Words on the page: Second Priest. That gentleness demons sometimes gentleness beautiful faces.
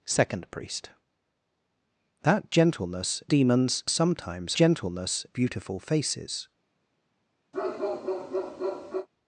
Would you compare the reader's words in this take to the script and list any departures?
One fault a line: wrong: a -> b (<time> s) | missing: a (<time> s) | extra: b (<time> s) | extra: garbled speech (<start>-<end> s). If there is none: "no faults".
no faults